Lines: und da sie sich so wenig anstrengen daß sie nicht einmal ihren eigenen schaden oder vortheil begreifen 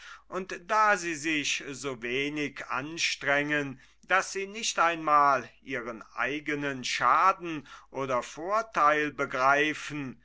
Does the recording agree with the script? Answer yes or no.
yes